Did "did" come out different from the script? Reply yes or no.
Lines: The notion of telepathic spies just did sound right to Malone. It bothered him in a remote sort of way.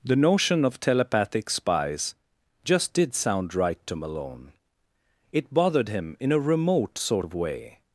no